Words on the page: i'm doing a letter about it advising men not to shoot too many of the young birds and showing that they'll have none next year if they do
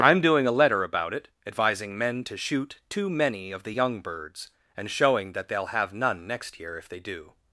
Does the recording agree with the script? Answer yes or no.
no